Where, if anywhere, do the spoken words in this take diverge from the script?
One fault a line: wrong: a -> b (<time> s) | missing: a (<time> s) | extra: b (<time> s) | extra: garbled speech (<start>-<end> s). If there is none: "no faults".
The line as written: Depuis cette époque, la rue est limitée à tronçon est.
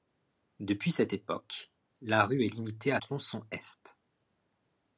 no faults